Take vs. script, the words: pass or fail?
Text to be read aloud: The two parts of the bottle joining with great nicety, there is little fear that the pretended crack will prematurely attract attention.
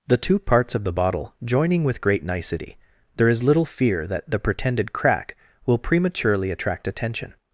pass